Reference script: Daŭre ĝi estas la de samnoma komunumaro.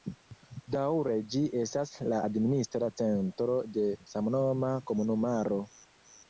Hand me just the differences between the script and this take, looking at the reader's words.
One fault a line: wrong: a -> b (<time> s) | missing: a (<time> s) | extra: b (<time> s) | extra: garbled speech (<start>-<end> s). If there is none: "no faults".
extra: administra centro (2.3 s)